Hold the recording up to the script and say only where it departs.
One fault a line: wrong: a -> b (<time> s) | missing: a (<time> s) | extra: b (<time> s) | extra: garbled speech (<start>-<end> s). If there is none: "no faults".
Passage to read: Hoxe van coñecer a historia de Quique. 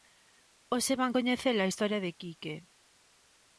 no faults